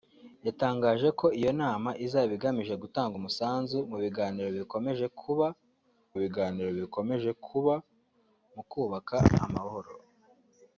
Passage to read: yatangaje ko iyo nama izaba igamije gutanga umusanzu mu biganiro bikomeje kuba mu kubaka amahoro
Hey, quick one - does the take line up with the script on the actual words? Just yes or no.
no